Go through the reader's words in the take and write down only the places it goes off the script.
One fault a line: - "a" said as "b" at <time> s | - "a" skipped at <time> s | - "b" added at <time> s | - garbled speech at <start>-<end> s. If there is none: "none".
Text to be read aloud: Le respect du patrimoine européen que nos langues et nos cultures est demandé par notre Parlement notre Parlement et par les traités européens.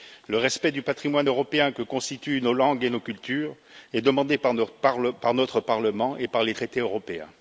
- "constituent" added at 1.8 s
- "notre Parlement" skipped at 6.2 s